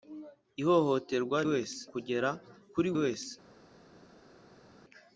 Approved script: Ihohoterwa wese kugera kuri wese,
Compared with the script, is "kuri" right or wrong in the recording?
right